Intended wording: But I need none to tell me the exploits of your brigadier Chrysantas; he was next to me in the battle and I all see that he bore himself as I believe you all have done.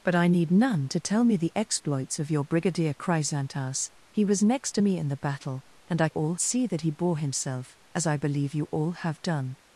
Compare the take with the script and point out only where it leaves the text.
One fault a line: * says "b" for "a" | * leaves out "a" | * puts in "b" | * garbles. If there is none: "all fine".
all fine